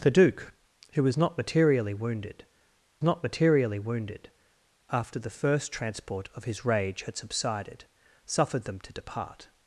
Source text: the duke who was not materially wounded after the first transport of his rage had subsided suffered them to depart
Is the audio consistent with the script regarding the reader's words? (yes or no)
no